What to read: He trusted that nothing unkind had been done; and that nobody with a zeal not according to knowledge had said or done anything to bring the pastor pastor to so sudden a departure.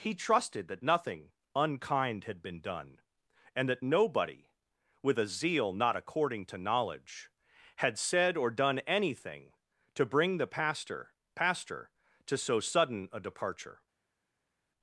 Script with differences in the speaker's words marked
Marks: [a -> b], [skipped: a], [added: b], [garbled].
He trusted that nothing unkind had been done; and that nobody with a zeal not according to knowledge had said or done anything to bring the pastor pastor to so sudden a departure.